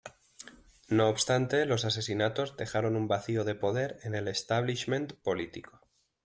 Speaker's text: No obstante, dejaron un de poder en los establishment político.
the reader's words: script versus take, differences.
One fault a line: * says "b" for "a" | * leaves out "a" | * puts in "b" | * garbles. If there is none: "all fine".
* puts in "los asesinatos"
* puts in "vacío"
* says "el" for "los"